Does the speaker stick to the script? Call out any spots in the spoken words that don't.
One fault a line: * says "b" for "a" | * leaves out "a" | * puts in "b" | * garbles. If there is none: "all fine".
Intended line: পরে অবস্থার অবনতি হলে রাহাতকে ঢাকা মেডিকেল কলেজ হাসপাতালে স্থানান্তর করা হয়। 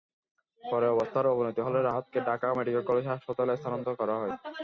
all fine